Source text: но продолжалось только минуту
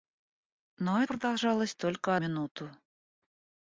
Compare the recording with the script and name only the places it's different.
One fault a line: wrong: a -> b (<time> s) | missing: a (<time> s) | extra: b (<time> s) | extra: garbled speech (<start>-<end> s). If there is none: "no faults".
no faults